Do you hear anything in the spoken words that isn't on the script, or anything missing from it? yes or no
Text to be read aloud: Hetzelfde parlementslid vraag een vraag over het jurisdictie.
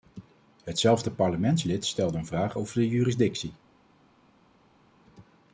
yes